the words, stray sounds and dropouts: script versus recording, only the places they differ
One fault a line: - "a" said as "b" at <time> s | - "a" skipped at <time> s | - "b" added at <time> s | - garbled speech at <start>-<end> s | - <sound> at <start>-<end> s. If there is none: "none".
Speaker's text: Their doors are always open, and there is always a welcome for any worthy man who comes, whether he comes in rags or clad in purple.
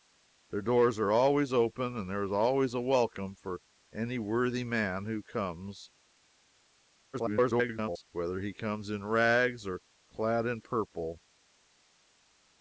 - garbled speech at 7.1-8.0 s